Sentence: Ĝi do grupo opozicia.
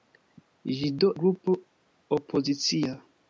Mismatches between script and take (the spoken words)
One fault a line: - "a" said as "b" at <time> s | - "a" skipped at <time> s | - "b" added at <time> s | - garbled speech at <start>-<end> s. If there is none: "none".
none